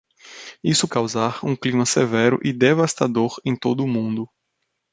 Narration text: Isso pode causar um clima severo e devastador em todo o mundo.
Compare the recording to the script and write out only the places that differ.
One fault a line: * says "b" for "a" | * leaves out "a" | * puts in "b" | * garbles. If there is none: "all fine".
* leaves out "pode"